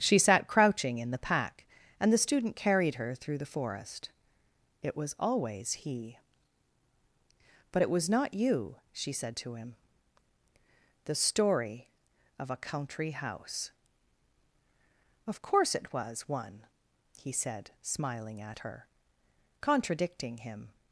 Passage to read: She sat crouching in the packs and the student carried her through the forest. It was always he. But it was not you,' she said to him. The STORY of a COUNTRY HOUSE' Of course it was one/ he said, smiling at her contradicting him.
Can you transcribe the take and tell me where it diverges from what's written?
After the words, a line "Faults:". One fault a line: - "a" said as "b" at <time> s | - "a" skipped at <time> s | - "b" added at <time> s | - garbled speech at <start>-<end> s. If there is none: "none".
She sat crouching in the pack and the student carried her through the forest. It was always he. But it was not you,' she said to him. The STORY of a COUNTRY HOUSE' Of course it was one/ he said, smiling at her contradicting him.
Faults:
- "packs" said as "pack" at 1.2 s